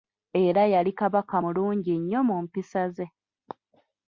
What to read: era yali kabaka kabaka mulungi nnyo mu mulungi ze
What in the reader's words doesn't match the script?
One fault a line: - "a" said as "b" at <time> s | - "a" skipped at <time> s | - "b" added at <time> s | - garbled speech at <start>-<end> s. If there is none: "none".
- "kabaka" skipped at 1.4 s
- "mulungi" said as "mpisa" at 2.4 s